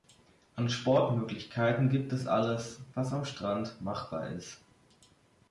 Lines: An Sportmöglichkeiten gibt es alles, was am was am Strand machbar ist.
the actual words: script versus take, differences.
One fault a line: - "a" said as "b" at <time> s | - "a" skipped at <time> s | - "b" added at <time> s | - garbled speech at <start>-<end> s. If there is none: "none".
- "was am" skipped at 3.2 s